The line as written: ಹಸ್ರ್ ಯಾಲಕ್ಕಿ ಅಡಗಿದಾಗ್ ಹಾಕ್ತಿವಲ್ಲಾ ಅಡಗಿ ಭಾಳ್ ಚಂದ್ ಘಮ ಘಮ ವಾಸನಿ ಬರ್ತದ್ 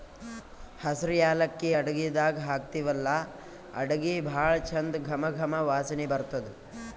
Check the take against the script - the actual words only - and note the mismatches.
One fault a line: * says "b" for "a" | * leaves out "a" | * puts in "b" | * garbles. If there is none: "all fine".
all fine